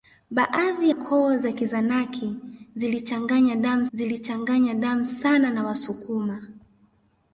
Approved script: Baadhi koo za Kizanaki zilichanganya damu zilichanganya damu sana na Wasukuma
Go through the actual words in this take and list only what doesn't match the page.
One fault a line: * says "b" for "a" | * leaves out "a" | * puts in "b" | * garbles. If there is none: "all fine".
all fine